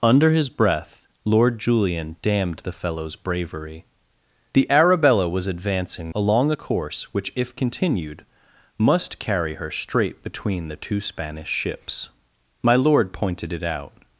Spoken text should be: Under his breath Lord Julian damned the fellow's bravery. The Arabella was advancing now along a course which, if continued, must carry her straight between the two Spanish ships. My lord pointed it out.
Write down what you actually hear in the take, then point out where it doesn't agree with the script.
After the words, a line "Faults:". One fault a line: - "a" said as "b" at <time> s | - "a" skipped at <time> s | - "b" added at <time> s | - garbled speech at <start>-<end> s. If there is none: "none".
Under his breath Lord Julian damned the fellow's bravery. The Arabella was advancing along a course which, if continued, must carry her straight between the two Spanish ships. My lord pointed it out.
Faults:
- "now" skipped at 6.1 s